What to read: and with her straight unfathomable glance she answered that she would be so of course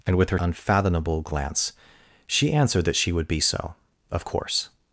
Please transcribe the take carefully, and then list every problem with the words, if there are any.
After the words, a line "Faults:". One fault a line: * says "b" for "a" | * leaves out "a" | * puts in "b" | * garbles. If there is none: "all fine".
and with her unfathomable glance she answered that she would be so of course
Faults:
* leaves out "straight"